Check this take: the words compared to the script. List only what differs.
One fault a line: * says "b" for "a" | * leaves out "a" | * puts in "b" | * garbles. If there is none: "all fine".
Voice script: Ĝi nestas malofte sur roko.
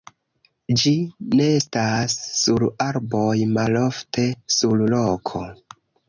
* puts in "sur arboj"